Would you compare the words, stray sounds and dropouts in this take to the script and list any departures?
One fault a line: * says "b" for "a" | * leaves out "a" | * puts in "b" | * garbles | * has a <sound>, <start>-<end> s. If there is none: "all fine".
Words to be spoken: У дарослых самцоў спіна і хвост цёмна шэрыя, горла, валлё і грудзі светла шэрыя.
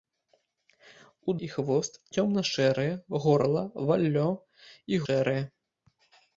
* leaves out "дарослых самцоў спіна"
* leaves out "грудзі светла"